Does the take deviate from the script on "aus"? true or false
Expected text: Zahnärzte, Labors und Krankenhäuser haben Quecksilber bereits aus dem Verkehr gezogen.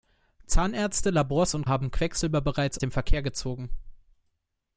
true